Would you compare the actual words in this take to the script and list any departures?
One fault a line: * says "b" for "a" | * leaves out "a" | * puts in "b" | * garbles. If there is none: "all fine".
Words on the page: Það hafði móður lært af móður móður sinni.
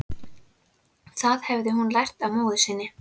* says "hún" for "móður"
* leaves out "móður"